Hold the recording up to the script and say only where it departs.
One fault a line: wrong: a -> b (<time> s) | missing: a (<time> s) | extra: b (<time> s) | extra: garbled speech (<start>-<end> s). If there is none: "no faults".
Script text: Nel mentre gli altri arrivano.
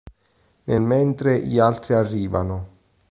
no faults